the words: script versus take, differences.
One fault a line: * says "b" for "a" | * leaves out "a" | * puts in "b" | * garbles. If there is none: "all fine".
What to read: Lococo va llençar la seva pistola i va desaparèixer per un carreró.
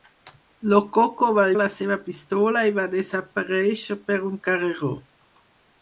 * leaves out "llençar"